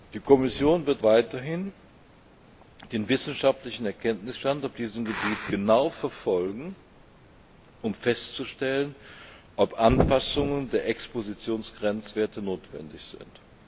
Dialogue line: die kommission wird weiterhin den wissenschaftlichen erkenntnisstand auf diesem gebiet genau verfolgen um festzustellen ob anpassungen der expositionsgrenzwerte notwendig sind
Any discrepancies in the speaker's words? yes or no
no